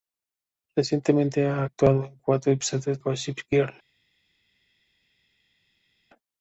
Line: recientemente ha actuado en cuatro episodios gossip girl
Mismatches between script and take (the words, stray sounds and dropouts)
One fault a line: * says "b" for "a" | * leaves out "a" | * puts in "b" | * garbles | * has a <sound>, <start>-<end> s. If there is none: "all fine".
all fine